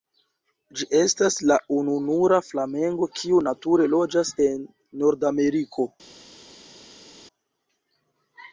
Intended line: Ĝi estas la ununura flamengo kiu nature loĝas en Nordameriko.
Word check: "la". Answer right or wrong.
right